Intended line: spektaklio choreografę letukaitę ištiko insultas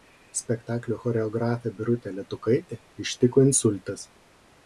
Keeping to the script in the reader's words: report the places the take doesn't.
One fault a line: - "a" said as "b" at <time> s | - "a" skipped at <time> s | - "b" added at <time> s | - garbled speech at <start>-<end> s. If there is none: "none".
- "birutę" added at 1.8 s